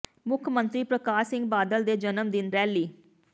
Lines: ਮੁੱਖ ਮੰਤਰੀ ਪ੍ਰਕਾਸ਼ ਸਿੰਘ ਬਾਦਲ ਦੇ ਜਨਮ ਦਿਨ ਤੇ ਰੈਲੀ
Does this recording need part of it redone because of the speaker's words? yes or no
yes